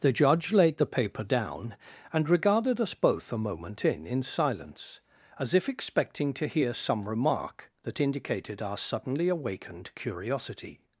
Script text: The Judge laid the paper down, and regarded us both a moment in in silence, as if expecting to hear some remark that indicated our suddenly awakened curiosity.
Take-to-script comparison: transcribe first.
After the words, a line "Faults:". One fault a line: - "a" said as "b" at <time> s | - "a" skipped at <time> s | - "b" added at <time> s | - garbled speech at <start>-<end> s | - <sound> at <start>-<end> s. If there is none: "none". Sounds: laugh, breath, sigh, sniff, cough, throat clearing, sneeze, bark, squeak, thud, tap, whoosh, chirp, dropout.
The Judge laid the paper down, and regarded us both a moment in in silence, as if expecting to hear some remark that indicated our suddenly awakened curiosity.
Faults:
none